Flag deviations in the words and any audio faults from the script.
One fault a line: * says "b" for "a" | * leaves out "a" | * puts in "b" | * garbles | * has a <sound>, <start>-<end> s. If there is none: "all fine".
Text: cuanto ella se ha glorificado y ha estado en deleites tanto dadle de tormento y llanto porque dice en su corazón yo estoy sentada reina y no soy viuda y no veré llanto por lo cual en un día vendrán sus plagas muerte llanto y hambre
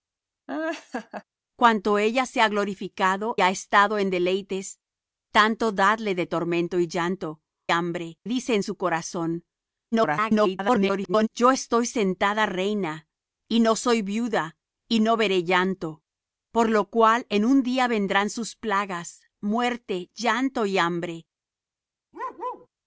* has a laugh, 0.5-1.2 s
* leaves out "y"
* says "hambre" for "porque"
* garbles
* has a bark, 22.1-22.7 s